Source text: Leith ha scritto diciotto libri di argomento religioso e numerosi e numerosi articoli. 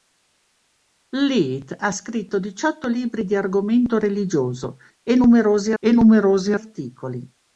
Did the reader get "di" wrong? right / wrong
right